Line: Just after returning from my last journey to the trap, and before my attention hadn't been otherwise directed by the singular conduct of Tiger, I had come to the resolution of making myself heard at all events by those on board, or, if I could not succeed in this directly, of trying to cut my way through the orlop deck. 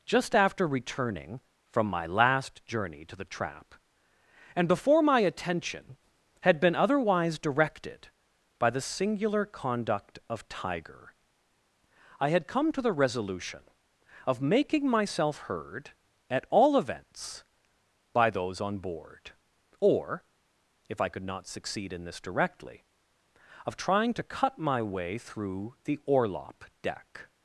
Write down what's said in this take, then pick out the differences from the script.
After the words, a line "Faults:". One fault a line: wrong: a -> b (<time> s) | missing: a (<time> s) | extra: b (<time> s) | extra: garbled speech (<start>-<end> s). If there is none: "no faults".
Just after returning from my last journey to the trap, and before my attention had been otherwise directed by the singular conduct of Tiger, I had come to the resolution of making myself heard at all events by those on board, or, if I could not succeed in this directly, of trying to cut my way through the orlop deck.
Faults:
wrong: hadn't -> had (6.4 s)